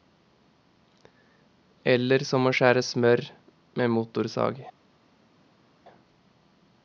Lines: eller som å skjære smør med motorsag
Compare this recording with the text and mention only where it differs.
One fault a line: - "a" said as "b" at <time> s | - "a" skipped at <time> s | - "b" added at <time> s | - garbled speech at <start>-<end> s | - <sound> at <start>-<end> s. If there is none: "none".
none